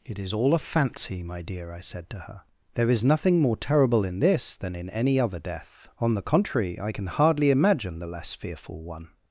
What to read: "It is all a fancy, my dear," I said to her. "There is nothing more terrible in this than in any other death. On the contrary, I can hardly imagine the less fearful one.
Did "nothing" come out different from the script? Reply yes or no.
no